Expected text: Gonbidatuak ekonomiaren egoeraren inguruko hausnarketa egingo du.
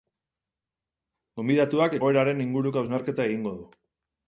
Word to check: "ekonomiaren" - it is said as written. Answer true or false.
false